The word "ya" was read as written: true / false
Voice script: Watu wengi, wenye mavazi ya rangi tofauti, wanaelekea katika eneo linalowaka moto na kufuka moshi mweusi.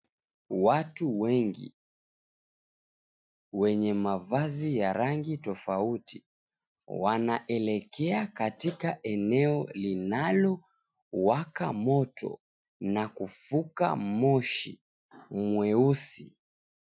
true